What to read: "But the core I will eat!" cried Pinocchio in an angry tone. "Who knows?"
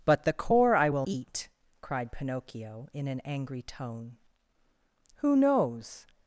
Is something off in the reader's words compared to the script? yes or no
no